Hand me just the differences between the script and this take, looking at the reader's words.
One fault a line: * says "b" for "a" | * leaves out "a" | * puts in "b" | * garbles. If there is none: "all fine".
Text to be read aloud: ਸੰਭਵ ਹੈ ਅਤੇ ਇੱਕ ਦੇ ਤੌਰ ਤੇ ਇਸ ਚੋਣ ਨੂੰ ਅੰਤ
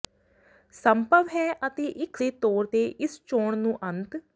all fine